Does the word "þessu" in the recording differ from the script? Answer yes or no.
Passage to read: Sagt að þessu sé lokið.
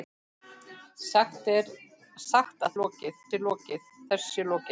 yes